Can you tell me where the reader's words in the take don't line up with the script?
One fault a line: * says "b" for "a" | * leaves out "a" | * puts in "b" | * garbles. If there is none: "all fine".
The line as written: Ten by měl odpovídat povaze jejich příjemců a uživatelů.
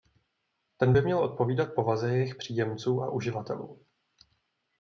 all fine